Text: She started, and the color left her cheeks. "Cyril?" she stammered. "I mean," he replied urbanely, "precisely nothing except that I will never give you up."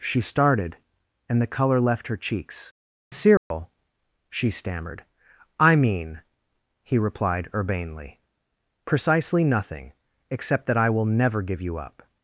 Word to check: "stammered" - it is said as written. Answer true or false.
true